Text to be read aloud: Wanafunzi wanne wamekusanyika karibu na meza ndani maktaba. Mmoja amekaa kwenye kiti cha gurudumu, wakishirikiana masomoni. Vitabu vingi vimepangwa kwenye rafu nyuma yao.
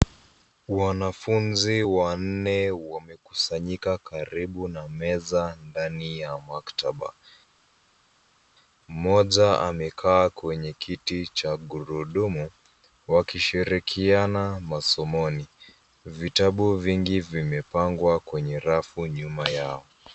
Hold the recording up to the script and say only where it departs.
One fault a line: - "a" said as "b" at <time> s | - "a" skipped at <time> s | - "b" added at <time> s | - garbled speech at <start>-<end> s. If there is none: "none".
- "ya" added at 6.2 s